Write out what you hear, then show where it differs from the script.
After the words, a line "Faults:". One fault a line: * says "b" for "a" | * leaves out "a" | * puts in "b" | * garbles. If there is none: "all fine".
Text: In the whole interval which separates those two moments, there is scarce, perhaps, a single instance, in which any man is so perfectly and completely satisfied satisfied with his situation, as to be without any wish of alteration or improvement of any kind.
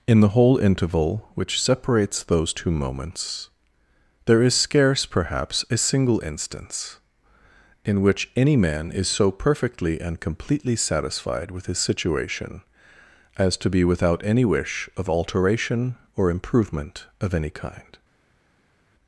In the whole interval which separates those two moments, there is scarce, perhaps, a single instance, in which any man is so perfectly and completely satisfied with his situation, as to be without any wish of alteration or improvement of any kind.
Faults:
* leaves out "satisfied"